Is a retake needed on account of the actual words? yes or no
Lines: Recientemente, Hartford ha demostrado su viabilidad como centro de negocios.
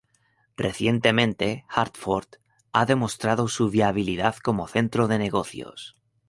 no